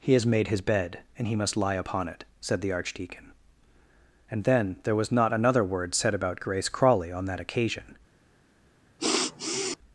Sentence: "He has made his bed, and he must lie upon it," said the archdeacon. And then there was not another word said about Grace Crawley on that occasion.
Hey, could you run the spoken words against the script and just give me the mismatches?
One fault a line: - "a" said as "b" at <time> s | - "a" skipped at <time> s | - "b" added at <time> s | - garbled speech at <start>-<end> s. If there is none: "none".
none